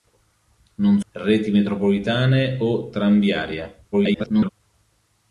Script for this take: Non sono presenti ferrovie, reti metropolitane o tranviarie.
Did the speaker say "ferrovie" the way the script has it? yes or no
no